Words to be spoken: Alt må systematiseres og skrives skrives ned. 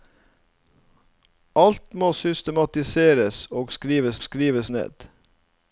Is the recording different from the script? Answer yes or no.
no